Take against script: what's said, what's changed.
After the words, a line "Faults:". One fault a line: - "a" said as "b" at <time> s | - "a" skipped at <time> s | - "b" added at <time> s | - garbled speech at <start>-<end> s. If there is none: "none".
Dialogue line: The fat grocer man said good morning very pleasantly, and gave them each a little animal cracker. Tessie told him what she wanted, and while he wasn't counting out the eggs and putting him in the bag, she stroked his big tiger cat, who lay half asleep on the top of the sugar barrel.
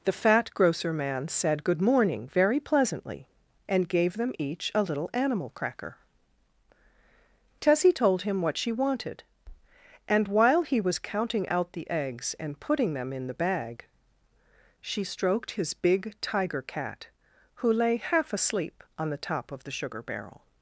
The fat grocer man said good morning very pleasantly, and gave them each a little animal cracker. Tessie told him what she wanted, and while he was counting out the eggs and putting them in the bag, she stroked his big tiger cat, who lay half asleep on the top of the sugar barrel.
Faults:
- "wasn't" said as "was" at 10.8 s
- "him" said as "them" at 12.9 s